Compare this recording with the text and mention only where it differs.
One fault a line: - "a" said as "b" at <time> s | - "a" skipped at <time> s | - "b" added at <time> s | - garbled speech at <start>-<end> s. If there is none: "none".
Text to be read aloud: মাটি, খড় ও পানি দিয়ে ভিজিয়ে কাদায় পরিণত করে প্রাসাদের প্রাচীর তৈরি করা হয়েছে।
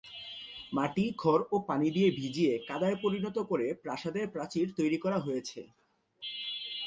none